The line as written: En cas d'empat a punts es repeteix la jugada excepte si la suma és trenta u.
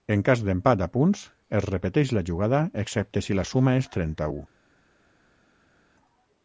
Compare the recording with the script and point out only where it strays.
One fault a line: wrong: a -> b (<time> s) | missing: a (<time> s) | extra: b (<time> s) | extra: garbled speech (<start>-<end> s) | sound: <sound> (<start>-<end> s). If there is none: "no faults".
no faults